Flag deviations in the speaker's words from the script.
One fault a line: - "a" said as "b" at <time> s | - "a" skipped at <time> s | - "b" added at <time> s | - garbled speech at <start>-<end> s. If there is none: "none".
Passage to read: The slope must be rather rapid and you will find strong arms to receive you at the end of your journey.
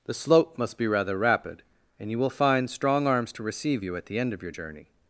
none